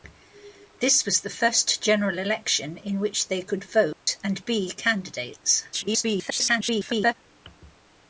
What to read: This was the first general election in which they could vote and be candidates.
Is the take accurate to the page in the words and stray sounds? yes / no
no